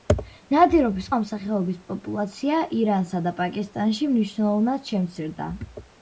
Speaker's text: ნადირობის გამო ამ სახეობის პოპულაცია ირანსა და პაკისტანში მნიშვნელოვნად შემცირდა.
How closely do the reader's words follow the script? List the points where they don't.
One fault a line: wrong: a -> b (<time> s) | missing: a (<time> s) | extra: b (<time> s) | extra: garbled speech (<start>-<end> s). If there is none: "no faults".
missing: გამო (1.1 s)